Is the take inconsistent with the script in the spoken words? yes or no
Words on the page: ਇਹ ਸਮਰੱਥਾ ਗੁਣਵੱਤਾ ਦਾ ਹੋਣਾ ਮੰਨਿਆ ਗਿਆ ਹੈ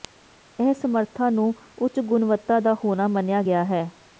yes